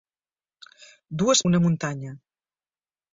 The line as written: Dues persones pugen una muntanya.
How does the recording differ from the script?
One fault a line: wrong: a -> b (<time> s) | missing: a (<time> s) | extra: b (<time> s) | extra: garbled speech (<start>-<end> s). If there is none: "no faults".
missing: persones pugen (1.4 s)